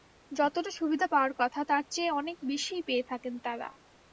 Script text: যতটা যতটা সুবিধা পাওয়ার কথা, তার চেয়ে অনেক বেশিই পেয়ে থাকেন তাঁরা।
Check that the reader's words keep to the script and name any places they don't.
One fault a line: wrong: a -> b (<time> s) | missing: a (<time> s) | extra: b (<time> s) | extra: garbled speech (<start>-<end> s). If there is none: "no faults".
missing: যতটা (0.7 s)